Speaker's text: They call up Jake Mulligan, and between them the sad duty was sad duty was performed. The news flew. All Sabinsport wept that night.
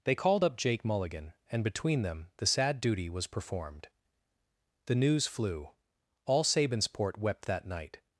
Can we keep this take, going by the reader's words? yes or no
no